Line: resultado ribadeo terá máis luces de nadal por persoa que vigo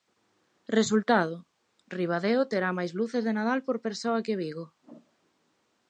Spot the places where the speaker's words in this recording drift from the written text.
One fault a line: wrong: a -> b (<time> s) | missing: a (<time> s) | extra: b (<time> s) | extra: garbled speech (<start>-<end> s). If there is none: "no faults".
no faults